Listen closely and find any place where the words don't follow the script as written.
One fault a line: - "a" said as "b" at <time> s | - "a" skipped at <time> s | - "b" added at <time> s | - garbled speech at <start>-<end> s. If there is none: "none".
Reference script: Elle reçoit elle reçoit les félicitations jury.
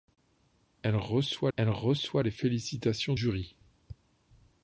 none